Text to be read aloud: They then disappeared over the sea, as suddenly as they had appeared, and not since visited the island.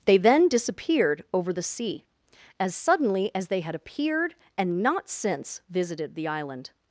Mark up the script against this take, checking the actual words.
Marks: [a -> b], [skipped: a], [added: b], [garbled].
They then disappeared over the sea, as suddenly as they had appeared, and not since visited the island.